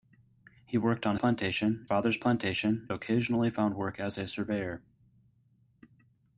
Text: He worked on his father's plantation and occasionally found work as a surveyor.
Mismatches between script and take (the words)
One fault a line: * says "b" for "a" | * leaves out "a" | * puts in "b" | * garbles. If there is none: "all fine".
* says "plantation" for "his"
* leaves out "and"